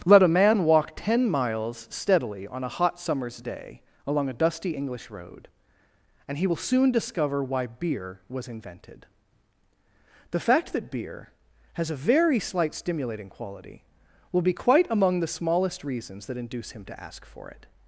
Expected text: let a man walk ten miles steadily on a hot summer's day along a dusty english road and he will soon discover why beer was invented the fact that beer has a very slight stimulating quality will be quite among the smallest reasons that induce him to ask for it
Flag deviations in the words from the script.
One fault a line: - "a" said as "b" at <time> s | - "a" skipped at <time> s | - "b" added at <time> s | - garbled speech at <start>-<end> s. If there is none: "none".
none